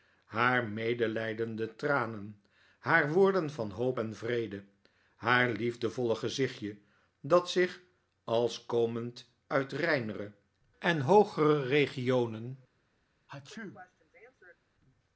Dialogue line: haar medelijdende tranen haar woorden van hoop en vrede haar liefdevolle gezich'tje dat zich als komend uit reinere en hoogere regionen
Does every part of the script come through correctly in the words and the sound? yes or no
no